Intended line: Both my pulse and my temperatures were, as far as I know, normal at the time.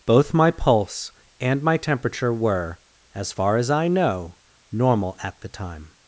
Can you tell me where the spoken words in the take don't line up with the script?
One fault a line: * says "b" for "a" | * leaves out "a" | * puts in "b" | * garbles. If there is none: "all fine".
* says "temperature" for "temperatures"